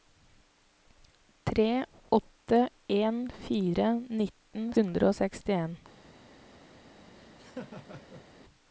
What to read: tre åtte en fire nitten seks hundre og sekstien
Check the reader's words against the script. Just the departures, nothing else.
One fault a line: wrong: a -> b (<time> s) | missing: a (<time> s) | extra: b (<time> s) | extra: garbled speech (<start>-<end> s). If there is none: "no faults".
missing: seks (4.7 s)